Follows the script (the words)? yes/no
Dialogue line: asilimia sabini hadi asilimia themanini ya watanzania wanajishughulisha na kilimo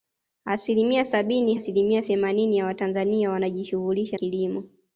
no